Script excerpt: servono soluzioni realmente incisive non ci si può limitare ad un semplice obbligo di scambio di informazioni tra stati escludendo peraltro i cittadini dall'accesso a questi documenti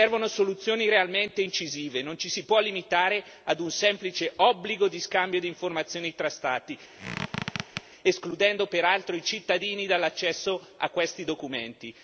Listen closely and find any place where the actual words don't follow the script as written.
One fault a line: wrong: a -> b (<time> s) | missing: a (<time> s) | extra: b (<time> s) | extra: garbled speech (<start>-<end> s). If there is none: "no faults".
no faults